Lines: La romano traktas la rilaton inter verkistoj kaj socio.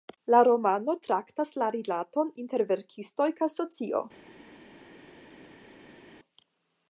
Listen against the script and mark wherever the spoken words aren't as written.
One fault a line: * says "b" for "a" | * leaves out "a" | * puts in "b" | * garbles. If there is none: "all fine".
all fine